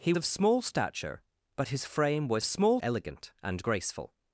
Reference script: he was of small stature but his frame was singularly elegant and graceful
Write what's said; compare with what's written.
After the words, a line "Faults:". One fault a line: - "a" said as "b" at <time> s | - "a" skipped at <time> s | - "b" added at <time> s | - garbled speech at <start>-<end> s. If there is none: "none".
he of small stature but his frame was small elegant and graceful
Faults:
- "was" skipped at 0.1 s
- "singularly" said as "small" at 2.4 s